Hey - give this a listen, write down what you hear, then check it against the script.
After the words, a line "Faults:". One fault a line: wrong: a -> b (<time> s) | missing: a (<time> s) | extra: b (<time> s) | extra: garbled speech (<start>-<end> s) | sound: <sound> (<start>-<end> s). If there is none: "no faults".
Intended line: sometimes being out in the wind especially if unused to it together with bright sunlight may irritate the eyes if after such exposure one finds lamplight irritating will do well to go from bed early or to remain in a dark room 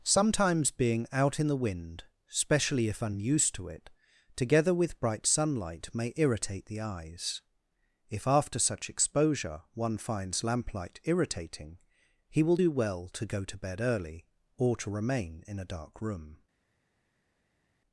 sometimes being out in the wind especially if unused to it together with bright sunlight may irritate the eyes if after such exposure one finds lamplight irritating he will do well to go to bed early or to remain in a dark room
Faults:
extra: he (12.3 s)
wrong: from -> to (13.5 s)